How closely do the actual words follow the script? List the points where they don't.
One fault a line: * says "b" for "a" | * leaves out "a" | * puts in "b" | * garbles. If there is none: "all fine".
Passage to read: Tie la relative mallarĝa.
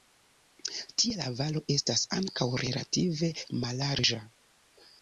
* puts in "valo estas ankaŭ"